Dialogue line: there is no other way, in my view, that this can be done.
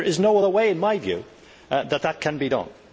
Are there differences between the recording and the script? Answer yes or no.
no